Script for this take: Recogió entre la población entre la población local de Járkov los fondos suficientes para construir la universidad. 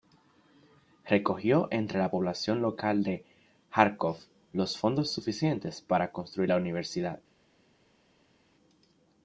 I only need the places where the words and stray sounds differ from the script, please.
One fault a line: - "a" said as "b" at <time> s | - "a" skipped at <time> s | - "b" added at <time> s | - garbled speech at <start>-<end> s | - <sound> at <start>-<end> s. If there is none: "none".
- "entre la población" skipped at 2.6 s